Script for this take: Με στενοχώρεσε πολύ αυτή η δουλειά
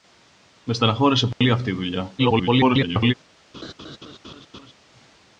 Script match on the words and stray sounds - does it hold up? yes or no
no